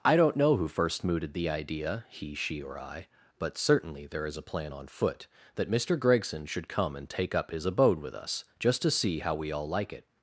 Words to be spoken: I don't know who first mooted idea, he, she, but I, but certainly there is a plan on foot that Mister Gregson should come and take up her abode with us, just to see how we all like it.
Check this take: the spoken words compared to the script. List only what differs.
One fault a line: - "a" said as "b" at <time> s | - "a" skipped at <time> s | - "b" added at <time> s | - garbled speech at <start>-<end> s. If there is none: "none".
- "the" added at 1.4 s
- "but" said as "or" at 2.6 s
- "her" said as "his" at 7.5 s